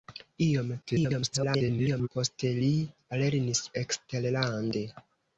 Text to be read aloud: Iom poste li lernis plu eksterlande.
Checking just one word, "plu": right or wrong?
wrong